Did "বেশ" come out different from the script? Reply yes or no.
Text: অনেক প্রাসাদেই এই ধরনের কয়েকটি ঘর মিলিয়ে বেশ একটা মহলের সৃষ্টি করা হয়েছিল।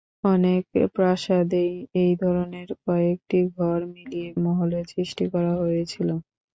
yes